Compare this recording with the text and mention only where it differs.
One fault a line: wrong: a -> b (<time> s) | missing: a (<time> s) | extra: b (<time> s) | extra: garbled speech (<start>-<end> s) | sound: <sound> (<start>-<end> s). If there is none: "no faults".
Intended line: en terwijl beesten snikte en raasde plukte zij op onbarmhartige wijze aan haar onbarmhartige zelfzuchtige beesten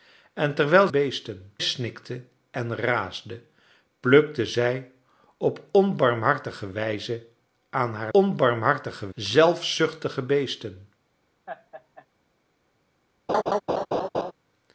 sound: laugh (11.5-12.1 s)
sound: laugh (13.3-14.3 s)